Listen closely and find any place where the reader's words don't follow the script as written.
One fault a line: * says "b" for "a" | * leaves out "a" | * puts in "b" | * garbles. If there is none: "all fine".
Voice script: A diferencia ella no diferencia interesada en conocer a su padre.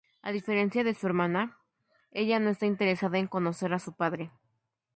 * puts in "de su hermana"
* says "está" for "diferencia"